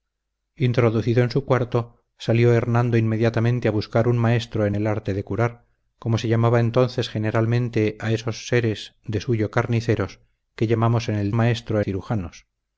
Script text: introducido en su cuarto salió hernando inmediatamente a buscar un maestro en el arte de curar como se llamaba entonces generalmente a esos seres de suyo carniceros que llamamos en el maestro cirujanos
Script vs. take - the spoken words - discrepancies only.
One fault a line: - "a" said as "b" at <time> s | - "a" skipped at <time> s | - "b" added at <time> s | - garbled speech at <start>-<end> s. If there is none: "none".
none